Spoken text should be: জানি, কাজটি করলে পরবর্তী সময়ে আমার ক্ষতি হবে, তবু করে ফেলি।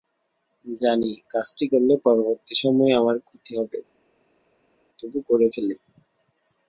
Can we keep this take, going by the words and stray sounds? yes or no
yes